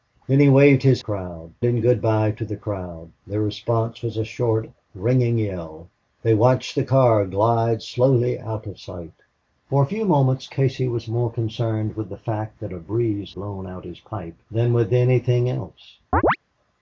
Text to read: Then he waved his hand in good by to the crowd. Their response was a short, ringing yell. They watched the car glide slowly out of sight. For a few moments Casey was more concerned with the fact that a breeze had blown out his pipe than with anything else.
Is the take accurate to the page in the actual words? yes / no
no